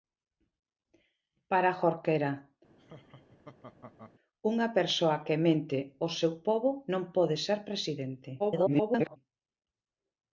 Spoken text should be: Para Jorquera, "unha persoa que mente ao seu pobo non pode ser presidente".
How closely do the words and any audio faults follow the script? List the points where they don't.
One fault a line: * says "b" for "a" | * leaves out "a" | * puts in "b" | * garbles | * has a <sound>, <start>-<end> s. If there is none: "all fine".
* has a laugh, 2.8-4.1 s
* garbles